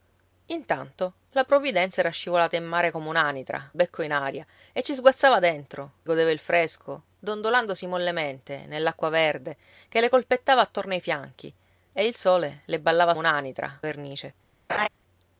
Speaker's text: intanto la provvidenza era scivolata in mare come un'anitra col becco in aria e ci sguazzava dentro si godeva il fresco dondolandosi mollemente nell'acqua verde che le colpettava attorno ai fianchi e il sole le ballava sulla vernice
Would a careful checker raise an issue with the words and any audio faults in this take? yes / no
yes